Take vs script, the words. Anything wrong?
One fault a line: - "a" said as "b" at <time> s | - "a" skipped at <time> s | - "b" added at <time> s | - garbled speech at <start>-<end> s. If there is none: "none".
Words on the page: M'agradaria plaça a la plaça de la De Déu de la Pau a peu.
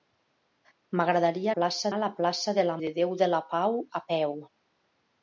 none